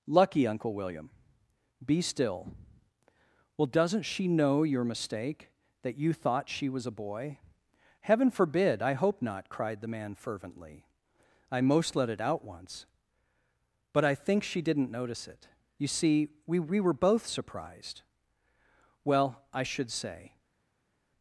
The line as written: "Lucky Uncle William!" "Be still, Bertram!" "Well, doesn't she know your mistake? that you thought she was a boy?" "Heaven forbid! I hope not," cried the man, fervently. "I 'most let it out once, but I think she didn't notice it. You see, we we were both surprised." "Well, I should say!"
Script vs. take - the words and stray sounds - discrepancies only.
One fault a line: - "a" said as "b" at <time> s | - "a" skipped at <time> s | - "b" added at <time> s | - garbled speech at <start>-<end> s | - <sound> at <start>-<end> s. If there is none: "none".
- "Bertram" skipped at 2.6 s